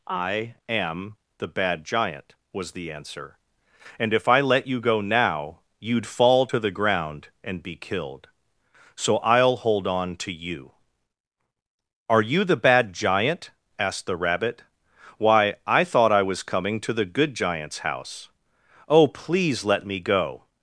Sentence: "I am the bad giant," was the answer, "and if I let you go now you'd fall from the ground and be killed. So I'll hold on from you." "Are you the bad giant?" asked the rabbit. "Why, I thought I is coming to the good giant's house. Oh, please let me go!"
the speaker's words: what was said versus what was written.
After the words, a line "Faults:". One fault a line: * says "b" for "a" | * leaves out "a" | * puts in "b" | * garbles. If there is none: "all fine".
"I am the bad giant," was the answer, "and if I let you go now you'd fall to the ground and be killed. So I'll hold on to you." "Are you the bad giant?" asked the rabbit. "Why, I thought I was coming to the good giant's house. Oh, please let me go!"
Faults:
* says "to" for "from"
* says "to" for "from"
* says "was" for "is"